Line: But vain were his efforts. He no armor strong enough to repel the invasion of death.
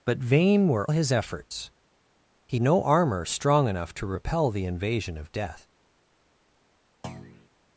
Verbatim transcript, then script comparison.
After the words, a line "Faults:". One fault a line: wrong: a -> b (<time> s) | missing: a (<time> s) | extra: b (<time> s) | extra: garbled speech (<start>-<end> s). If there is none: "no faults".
But vain were his efforts. He no armor strong enough to repel the invasion of death.
Faults:
no faults